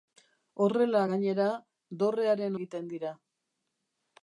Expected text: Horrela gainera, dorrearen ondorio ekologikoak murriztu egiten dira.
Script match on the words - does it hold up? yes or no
no